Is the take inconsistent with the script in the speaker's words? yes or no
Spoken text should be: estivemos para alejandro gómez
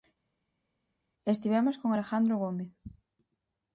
yes